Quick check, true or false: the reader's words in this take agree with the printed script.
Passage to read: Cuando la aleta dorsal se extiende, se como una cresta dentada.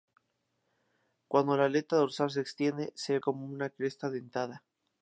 true